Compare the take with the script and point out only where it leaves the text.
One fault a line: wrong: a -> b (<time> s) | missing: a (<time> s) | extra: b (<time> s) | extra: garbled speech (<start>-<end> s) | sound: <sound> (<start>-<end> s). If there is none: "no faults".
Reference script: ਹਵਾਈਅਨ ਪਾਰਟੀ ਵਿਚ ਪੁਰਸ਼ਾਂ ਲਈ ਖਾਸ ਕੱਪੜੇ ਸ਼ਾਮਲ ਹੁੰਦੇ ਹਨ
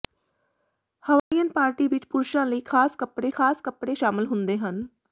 sound: dropout (1.2-1.3 s)
extra: ਖਾਸ ਕੱਪੜੇ (3.3 s)